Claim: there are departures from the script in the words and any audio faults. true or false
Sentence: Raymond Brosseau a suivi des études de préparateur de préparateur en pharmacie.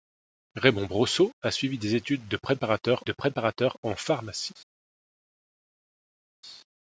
false